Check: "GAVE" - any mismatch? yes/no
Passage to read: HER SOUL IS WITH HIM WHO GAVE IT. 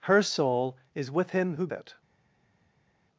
yes